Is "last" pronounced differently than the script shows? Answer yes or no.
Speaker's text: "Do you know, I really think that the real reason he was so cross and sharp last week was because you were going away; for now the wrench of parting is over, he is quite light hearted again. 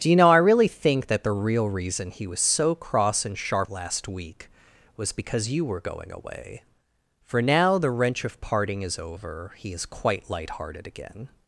no